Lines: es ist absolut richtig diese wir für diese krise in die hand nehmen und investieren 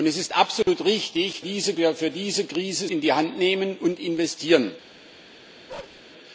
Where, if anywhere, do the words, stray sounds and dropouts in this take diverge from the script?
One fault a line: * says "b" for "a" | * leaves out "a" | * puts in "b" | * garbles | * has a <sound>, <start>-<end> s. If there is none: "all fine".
* has a dropout, 0.6-0.7 s
* has a bark, 5.7-6.0 s